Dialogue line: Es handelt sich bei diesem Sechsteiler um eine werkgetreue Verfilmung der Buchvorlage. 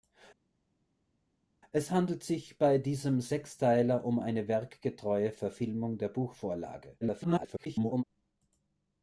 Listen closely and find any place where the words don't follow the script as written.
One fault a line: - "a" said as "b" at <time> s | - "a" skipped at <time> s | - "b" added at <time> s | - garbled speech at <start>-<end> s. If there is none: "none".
- garbled speech at 7.0-8.0 s